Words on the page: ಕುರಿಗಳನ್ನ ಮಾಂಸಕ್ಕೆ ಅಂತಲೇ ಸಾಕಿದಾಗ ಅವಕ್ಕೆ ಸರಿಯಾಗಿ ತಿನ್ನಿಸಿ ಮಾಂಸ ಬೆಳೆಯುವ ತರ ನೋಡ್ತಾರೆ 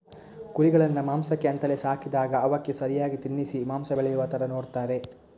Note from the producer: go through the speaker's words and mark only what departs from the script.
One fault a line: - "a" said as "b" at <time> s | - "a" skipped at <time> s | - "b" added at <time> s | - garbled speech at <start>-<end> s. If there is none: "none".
none